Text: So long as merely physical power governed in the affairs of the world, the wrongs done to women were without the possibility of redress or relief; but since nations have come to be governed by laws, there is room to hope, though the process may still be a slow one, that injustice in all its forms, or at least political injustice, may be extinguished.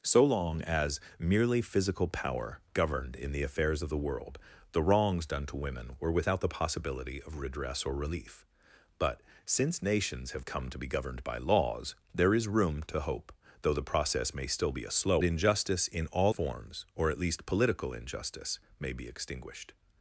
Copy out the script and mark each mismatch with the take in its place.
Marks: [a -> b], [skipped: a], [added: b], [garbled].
So long as merely physical power governed in the affairs of the world, the wrongs done to women were without the possibility of redress or relief; but since nations have come to be governed by laws, there is room to hope, though the process may still be a slow [skipped: one, that] injustice in all [skipped: its] forms, or at least political injustice, may be extinguished.